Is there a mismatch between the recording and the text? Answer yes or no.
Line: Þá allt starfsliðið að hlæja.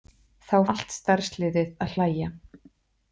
no